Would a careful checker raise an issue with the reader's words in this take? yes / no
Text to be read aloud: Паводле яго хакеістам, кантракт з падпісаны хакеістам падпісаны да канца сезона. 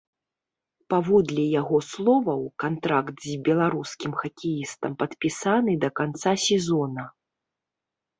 yes